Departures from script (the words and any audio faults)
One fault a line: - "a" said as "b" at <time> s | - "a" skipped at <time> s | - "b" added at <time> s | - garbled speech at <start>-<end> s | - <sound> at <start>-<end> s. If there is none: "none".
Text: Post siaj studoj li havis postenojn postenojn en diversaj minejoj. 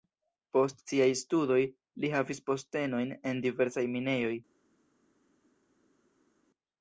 - "postenojn" skipped at 3.2 s